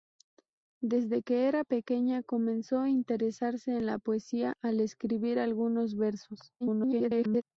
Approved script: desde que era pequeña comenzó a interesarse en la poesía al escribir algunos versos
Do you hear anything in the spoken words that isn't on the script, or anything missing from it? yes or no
yes